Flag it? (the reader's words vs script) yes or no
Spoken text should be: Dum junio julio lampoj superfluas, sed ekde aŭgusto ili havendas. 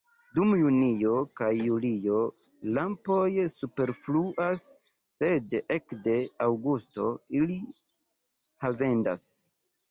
yes